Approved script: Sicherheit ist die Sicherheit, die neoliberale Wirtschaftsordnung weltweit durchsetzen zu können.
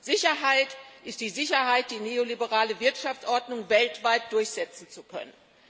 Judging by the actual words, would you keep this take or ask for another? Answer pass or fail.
pass